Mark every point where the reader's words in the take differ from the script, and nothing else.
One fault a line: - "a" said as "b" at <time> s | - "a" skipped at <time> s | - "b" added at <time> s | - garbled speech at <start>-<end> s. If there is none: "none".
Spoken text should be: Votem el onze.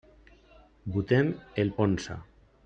none